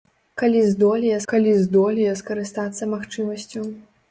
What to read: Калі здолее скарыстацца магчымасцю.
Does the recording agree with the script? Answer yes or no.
no